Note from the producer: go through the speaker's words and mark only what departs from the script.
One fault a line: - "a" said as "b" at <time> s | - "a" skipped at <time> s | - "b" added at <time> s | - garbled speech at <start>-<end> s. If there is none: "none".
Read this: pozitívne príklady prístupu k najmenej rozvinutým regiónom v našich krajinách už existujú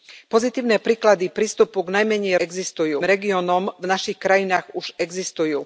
- "rozvinutým" said as "existujú" at 2.4 s